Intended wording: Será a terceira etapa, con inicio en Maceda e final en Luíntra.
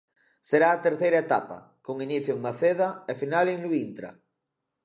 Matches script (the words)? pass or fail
pass